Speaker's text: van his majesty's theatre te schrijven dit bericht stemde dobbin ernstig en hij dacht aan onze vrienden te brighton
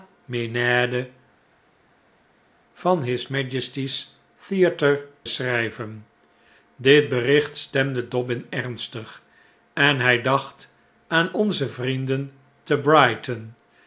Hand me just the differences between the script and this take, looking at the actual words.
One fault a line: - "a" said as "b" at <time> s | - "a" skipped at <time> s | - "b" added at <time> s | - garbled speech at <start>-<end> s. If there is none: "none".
- "te" skipped at 5.1 s